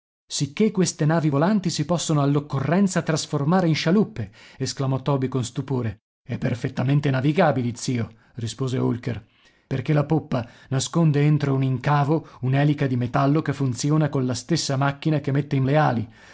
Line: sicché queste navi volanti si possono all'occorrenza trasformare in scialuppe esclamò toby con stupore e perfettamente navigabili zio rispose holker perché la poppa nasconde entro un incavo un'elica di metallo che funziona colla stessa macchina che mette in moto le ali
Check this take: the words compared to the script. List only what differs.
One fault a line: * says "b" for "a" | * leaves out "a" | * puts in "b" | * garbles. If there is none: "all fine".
* leaves out "moto"